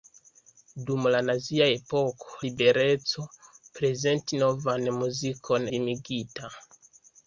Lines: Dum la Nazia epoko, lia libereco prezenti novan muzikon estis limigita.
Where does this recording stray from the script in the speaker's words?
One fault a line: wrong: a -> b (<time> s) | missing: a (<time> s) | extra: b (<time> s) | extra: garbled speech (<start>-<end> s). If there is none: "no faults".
missing: lia (2.3 s)
missing: estis (5.7 s)